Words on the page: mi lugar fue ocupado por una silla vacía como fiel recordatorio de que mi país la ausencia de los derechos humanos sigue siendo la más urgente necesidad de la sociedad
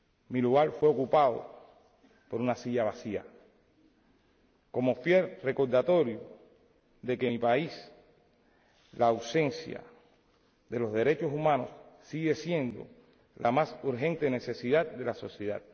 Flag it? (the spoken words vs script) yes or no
no